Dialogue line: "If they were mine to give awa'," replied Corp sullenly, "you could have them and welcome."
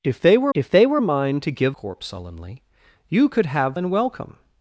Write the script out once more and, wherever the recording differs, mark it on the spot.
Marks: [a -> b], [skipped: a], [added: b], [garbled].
"If they were [added: if they were] mine to give [skipped: awa'," replied] Corp sullenly, "you could have [skipped: them] and welcome."